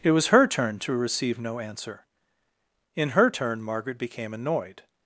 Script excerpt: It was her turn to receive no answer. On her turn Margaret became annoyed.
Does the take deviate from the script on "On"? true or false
true